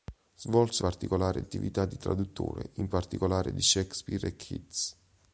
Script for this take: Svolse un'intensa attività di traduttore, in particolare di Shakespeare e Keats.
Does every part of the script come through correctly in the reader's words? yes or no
no